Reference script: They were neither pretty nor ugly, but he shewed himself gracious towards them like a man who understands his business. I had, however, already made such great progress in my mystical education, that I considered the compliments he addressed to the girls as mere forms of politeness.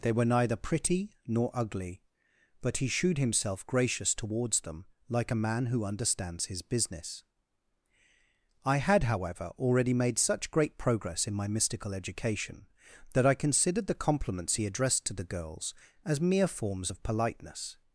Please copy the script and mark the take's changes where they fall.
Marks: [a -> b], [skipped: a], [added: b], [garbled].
They were neither pretty nor ugly, but he shewed himself gracious towards them like a man who understands his business. I had, however, already made such great progress in my mystical education, that I considered the compliments he addressed to the girls as mere forms of politeness.